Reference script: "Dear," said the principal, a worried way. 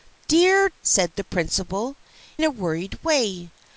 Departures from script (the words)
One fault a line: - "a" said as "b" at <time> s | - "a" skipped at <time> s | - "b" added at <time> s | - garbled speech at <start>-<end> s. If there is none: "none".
none